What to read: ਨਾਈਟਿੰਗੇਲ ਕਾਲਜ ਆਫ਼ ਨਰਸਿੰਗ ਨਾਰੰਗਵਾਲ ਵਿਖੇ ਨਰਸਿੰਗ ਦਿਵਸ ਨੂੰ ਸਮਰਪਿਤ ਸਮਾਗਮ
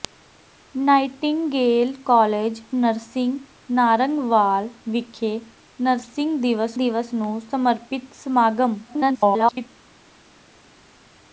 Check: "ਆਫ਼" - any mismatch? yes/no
yes